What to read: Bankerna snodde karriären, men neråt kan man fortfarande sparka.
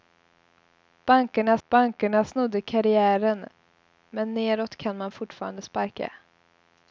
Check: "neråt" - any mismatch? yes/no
no